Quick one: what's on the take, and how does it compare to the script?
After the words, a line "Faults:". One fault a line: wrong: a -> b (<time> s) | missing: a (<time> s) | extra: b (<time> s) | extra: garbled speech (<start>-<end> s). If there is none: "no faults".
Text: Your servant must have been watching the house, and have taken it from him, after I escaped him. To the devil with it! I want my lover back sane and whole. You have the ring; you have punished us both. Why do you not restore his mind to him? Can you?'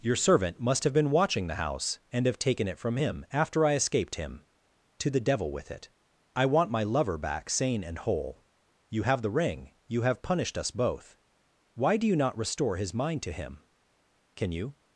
Your servant must have been watching the house, and have taken it from him, after I escaped him. To the devil with it! I want my lover back sane and whole. You have the ring; you have punished us both. Why do you not restore his mind to him? Can you?'
Faults:
no faults